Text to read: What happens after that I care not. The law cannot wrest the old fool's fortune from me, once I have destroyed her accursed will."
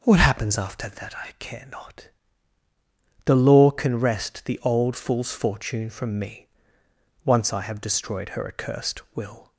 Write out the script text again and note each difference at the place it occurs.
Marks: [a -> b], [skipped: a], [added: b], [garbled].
What happens after that I care not. The law [cannot -> can] wrest the old fool's fortune from me, once I have destroyed her accursed will."